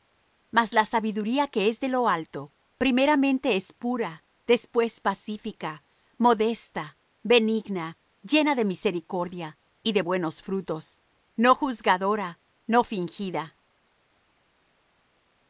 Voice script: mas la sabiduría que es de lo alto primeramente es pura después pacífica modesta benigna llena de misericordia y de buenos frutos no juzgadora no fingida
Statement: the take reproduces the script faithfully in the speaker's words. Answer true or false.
true